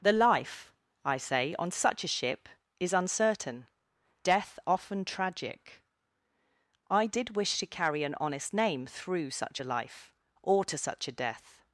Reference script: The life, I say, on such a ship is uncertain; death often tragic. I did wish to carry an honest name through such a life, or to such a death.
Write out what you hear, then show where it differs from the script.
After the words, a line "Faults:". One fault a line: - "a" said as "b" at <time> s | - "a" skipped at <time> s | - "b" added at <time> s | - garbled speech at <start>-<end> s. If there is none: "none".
The life, I say, on such a ship is uncertain; death often tragic. I did wish to carry an honest name through such a life, or to such a death.
Faults:
none